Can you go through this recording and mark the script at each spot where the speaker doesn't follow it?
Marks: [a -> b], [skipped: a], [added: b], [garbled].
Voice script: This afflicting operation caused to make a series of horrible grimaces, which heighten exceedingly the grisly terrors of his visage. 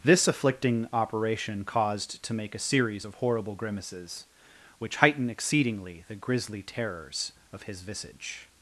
This afflicting operation caused to make a series of horrible grimaces, which heighten exceedingly the grisly terrors of his visage.